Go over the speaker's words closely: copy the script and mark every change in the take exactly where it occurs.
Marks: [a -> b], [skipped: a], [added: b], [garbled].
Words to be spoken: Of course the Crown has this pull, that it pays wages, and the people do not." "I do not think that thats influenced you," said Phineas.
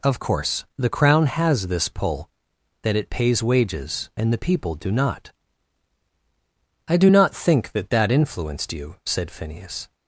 Of course the Crown has this pull, that it pays wages, and the people do not." "I do not think that [thats -> that] influenced you," said Phineas.